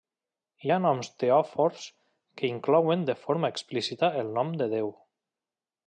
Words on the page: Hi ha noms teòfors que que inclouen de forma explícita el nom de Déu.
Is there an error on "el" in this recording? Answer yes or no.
no